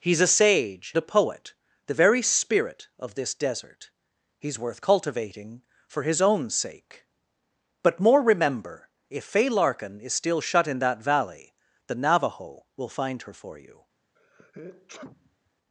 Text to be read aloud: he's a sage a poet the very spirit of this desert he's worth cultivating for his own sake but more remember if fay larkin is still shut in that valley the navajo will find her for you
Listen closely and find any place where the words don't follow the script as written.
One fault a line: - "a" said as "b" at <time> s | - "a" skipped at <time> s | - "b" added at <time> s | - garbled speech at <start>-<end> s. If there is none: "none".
none